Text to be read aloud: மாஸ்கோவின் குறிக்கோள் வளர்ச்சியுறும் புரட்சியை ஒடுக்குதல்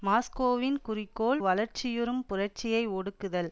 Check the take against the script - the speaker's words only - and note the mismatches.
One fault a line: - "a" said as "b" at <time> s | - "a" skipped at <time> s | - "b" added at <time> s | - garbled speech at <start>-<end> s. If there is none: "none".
none